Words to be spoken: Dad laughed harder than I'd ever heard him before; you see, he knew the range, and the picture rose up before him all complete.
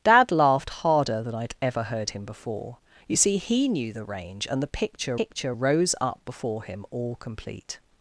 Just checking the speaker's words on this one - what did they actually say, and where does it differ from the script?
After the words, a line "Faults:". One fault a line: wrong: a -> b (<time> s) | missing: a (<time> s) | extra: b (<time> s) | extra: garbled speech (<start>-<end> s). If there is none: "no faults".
Dad laughed harder than I'd ever heard him before; you see, he knew the range, and the picture picture rose up before him all complete.
Faults:
extra: picture (5.1 s)